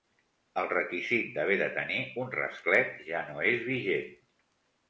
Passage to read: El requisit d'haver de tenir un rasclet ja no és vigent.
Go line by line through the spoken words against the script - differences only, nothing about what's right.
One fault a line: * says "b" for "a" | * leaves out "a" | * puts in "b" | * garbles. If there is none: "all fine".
all fine